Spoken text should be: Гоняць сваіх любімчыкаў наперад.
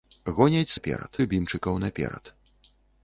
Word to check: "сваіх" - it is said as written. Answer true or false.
false